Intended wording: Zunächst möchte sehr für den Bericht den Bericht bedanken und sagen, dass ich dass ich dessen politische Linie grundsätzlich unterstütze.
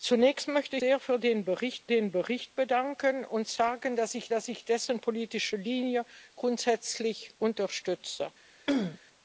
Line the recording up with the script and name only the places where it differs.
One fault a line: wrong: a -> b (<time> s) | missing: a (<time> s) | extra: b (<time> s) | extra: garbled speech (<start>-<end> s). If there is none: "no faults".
no faults